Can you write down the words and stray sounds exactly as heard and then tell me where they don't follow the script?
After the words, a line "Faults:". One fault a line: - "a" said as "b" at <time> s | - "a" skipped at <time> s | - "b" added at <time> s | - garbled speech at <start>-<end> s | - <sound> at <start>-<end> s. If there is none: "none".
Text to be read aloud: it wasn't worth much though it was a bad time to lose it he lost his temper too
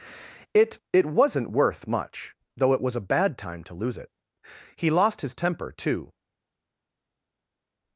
it it wasn't worth much though it was a bad time to lose it he lost his temper too
Faults:
- "it" added at 0.9 s